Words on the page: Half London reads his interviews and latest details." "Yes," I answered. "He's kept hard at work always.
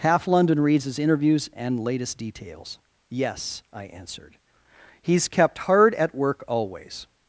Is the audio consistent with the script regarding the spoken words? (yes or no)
yes